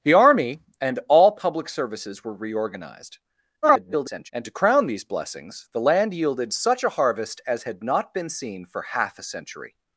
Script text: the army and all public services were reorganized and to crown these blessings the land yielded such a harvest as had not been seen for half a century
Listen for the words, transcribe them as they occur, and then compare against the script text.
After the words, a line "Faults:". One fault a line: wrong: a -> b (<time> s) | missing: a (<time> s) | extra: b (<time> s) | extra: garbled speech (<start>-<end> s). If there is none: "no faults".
the army and all public services were reorganized [garbled] and to crown these blessings the land yielded such a harvest as had not been seen for half a century
Faults:
extra: garbled speech (3.6-4.3 s)